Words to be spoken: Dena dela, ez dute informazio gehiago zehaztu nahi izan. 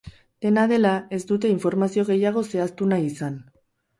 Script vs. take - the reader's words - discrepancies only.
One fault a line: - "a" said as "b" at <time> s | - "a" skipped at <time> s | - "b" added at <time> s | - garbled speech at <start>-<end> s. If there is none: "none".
none